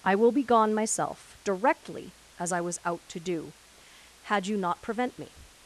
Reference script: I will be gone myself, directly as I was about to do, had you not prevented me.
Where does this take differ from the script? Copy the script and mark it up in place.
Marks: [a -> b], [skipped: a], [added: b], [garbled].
I will be gone myself, directly as I was [about -> out] to do, had you not [prevented -> prevent] me.